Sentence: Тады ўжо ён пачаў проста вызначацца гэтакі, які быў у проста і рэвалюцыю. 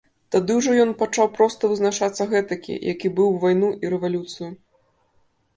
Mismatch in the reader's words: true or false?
true